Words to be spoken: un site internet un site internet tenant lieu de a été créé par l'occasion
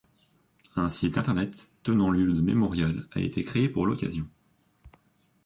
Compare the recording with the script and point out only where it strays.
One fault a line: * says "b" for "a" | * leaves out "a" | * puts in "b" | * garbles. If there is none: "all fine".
* leaves out "un site internet"
* puts in "mémorial"
* says "pour" for "par"